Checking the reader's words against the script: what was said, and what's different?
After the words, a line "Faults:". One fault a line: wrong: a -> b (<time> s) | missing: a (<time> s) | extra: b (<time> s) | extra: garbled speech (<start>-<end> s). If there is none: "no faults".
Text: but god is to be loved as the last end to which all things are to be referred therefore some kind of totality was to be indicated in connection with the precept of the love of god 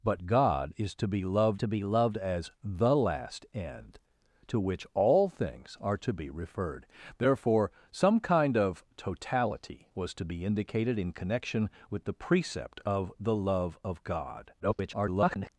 but god is to be loved to be loved as the last end to which all things are to be referred therefore some kind of totality was to be indicated in connection with the precept of the love of god [garbled]
Faults:
extra: to be loved (1.6 s)
extra: garbled speech (14.6-15.5 s)